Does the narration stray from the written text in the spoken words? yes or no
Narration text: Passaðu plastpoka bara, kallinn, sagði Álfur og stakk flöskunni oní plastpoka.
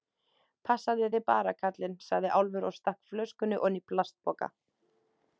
yes